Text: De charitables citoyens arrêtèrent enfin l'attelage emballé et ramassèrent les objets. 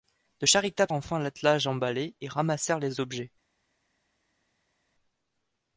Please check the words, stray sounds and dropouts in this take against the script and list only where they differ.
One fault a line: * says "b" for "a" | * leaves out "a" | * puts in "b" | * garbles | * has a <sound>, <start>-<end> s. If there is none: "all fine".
* leaves out "citoyens arrêtèrent"